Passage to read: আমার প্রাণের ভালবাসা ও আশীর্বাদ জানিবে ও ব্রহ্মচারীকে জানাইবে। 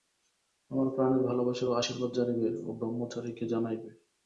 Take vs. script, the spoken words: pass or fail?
pass